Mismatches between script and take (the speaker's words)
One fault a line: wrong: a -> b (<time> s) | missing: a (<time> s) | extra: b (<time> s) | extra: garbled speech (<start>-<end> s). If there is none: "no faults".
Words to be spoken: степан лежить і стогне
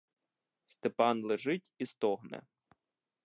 no faults